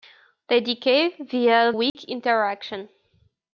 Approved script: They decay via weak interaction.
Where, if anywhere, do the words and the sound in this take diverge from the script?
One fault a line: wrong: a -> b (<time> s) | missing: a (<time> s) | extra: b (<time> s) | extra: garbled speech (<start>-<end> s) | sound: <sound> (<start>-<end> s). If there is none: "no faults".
sound: dropout (1.9-1.9 s)